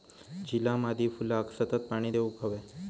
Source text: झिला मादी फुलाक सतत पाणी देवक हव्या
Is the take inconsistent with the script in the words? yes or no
no